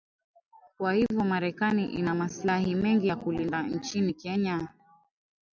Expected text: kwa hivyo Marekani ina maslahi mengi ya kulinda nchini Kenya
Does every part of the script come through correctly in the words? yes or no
yes